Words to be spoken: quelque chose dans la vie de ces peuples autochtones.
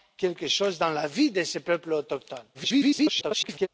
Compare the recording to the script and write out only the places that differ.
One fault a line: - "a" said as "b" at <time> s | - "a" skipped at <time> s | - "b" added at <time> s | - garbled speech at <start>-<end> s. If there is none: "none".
- garbled speech at 2.5-3.7 s